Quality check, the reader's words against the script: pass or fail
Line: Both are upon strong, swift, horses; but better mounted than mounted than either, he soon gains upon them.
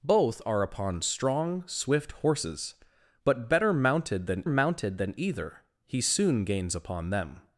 pass